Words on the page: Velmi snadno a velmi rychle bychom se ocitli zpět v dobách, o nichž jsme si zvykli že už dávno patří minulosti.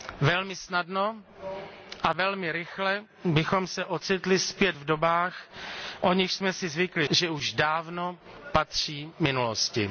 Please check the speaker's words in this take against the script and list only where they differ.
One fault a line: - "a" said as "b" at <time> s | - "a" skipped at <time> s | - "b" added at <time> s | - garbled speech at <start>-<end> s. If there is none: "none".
none